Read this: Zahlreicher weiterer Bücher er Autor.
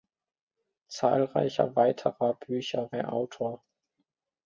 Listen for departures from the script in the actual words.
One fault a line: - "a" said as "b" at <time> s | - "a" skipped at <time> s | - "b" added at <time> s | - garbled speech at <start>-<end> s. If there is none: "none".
none